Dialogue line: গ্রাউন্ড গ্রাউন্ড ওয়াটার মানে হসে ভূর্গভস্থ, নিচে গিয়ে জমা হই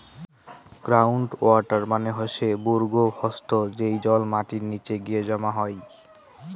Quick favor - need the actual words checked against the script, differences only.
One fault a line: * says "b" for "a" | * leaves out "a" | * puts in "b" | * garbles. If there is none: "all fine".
* leaves out "গ্রাউন্ড"
* puts in "যেই জল মাটির"